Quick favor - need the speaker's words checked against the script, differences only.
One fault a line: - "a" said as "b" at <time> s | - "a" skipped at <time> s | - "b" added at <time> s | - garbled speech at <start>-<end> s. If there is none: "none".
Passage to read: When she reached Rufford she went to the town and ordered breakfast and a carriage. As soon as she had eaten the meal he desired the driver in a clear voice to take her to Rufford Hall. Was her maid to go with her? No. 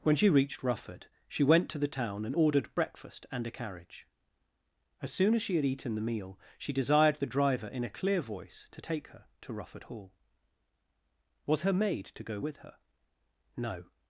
- "he" said as "she" at 6.6 s